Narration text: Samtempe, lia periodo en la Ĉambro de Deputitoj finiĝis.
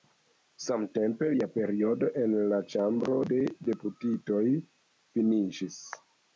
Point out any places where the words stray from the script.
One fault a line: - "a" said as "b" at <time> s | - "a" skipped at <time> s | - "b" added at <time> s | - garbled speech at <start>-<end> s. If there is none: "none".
none